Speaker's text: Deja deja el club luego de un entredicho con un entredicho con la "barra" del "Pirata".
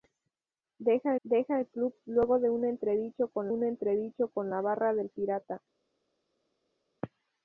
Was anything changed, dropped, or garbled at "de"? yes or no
no